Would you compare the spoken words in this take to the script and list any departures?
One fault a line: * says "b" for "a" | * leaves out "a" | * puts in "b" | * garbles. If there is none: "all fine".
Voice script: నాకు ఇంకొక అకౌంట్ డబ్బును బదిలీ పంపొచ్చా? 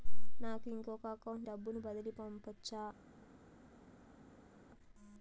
all fine